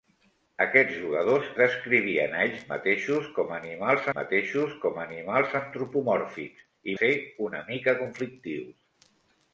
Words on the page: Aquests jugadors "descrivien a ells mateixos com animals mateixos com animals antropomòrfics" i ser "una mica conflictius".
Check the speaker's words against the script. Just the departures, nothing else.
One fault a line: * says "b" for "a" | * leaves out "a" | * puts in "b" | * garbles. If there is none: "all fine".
all fine